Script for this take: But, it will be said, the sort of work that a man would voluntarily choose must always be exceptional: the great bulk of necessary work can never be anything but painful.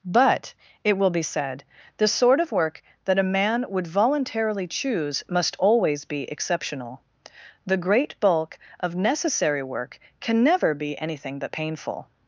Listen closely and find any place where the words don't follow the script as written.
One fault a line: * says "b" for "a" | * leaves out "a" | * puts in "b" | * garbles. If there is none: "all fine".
all fine